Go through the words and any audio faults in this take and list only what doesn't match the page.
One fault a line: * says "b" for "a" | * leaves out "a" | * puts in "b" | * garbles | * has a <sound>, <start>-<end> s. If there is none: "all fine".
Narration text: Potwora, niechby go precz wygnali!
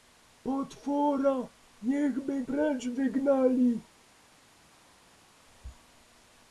* leaves out "go"